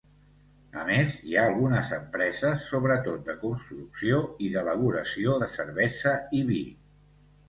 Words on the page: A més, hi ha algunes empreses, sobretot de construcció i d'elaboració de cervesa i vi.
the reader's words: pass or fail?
pass